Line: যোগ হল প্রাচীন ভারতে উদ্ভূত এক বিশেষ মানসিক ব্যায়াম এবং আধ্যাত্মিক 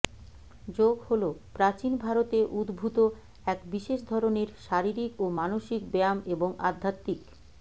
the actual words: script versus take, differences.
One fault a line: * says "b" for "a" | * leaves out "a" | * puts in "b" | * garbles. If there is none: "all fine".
* puts in "ধরনের শারীরিক ও"